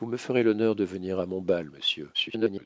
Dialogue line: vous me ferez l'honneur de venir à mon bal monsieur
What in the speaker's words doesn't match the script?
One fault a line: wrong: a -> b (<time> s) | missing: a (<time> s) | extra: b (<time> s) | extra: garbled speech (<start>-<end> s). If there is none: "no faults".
extra: garbled speech (2.1-2.7 s)